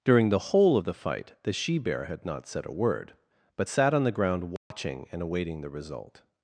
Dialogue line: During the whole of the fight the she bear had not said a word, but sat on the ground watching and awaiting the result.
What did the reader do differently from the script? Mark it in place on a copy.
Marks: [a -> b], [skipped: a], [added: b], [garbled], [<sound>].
During the whole of the fight the she bear had not said a word, but sat on the ground watching [dropout] and awaiting the result.